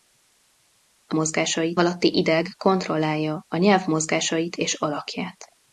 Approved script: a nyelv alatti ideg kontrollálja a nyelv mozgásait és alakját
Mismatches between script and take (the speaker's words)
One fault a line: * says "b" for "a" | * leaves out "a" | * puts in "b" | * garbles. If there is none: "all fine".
* says "mozgásait" for "nyelv"